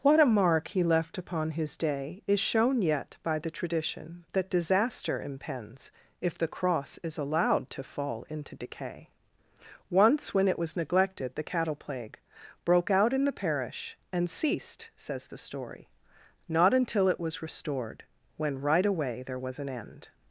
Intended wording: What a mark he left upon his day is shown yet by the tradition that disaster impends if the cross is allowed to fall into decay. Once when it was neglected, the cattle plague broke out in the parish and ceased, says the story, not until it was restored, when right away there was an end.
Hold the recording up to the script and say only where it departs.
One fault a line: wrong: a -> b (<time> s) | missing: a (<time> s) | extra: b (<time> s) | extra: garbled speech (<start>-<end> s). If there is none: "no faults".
no faults